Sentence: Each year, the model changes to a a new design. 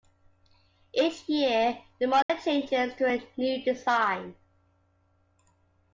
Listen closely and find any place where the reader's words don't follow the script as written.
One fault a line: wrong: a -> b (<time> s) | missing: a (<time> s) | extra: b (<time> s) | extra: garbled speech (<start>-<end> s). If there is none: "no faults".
missing: a (3.3 s)